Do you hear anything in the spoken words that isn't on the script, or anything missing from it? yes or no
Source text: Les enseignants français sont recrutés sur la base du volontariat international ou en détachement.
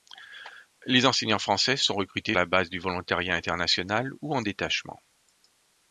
yes